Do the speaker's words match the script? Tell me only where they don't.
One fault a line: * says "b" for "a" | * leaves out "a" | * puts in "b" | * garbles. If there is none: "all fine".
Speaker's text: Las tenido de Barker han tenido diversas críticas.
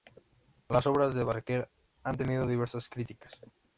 * says "obras" for "tenido"